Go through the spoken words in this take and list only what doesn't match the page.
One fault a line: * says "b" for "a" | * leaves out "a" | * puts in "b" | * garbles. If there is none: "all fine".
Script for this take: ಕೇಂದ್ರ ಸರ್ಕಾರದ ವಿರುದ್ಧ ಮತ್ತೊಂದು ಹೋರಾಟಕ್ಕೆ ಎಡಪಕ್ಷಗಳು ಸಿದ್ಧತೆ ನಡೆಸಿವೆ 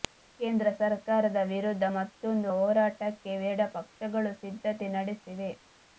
all fine